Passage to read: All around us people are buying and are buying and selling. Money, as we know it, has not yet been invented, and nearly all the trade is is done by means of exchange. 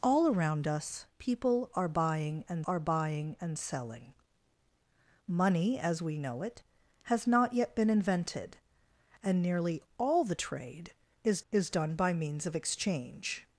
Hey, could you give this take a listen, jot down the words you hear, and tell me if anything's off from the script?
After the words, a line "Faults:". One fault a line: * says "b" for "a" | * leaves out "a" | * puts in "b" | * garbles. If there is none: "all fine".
All around us people are buying and are buying and selling. Money, as we know it, has not yet been invented, and nearly all the trade is is done by means of exchange.
Faults:
all fine